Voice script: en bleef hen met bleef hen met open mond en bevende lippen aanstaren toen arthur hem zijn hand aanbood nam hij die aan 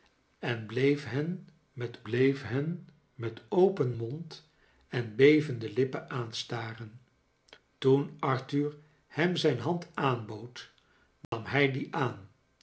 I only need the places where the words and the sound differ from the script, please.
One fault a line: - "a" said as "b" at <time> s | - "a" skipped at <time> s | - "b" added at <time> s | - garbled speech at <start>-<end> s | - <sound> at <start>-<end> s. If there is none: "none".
- dropout at 11.2-11.3 s